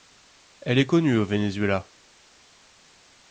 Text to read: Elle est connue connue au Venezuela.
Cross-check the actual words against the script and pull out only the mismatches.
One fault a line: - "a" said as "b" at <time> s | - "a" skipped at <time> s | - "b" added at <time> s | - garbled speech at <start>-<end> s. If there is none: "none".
- "connue" skipped at 1.2 s